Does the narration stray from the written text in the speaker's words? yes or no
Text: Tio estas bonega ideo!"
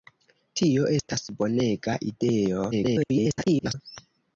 yes